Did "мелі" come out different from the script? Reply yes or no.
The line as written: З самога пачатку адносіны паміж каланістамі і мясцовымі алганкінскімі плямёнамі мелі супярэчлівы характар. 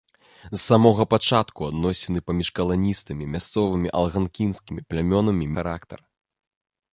yes